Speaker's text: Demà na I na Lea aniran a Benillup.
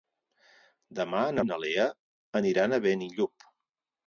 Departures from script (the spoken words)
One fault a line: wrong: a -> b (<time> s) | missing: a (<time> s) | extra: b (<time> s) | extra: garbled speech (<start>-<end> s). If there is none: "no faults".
no faults